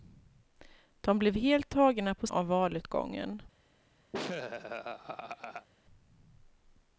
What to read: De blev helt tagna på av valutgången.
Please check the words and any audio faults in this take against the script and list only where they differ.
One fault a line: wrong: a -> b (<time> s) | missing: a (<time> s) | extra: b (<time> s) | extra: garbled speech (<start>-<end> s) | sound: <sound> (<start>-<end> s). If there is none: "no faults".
sound: laugh (4.1-5.7 s)